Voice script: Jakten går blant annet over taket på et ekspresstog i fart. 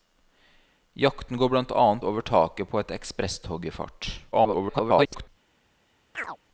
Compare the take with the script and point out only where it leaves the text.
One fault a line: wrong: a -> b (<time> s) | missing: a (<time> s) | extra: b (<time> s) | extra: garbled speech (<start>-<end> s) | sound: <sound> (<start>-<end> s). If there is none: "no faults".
extra: garbled speech (4.3-5.3 s)
sound: chirp (6.1-6.4 s)